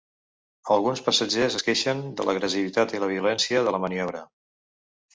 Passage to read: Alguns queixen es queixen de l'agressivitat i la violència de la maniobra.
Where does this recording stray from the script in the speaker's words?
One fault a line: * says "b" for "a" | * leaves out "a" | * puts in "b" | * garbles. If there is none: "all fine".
* says "passatgers" for "queixen"